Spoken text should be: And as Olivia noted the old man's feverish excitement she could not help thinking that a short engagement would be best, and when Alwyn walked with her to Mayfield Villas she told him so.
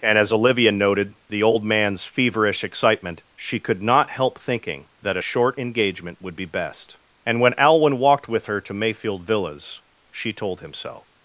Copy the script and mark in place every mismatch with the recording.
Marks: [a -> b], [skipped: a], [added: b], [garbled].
And as Olivia noted the old man's feverish excitement she could not help thinking that a short engagement would be best, and when Alwyn walked with her to Mayfield Villas she told him so.